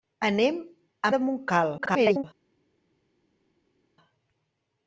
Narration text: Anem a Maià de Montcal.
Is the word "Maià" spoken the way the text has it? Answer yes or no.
no